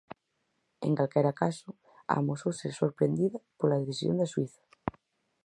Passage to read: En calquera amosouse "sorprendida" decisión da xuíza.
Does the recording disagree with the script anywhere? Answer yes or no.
yes